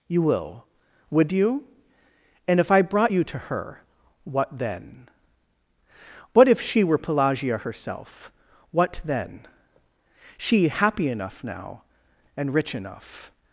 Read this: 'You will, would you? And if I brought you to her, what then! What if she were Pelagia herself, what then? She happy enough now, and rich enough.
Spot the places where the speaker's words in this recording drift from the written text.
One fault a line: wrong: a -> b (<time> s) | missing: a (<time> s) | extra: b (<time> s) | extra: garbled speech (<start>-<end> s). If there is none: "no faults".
no faults